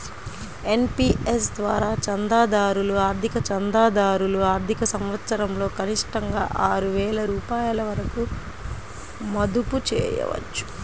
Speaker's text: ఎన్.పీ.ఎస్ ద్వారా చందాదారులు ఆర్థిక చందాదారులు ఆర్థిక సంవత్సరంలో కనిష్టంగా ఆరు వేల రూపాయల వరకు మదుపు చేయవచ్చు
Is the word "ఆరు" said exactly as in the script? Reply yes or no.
yes